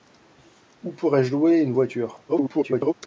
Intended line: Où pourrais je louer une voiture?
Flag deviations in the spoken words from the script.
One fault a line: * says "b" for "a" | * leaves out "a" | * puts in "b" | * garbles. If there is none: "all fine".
* garbles